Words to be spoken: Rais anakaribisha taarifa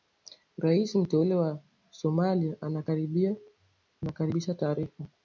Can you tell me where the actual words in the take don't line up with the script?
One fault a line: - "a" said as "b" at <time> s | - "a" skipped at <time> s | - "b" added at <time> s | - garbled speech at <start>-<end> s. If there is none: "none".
- "mteule wa Somalia" added at 0.9 s